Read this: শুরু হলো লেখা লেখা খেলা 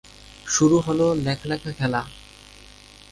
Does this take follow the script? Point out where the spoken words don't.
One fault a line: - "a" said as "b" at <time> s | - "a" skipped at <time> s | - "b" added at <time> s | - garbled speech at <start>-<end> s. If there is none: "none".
none